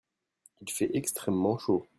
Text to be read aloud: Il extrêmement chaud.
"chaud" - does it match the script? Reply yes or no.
yes